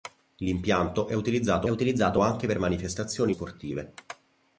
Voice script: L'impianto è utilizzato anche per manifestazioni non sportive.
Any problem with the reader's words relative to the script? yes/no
yes